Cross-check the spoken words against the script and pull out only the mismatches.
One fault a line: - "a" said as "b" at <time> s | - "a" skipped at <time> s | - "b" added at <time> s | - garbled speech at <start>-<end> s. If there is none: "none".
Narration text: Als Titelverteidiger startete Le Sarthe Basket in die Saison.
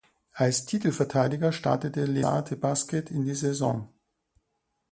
none